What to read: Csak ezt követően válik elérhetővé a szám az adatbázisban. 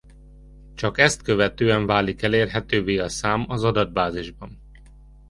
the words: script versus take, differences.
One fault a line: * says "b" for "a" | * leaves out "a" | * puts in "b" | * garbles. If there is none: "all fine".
all fine